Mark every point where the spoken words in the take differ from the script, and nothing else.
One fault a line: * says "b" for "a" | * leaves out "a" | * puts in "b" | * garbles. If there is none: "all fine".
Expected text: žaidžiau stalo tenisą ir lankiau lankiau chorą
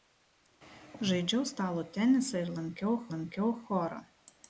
all fine